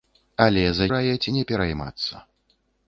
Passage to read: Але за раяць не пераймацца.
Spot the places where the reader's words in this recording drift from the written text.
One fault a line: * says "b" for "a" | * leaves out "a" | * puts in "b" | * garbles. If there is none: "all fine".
all fine